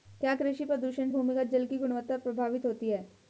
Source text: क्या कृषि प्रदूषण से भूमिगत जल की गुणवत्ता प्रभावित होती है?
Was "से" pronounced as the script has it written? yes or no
no